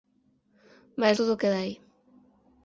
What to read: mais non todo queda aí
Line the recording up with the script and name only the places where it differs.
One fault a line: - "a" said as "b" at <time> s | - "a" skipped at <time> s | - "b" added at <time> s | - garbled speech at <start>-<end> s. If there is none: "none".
- "non" skipped at 1.2 s